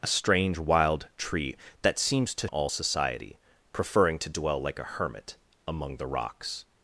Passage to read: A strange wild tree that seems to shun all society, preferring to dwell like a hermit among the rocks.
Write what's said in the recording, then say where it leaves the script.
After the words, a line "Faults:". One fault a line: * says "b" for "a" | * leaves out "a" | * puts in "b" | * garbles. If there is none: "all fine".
A strange wild tree that seems to all society, preferring to dwell like a hermit among the rocks.
Faults:
* leaves out "shun"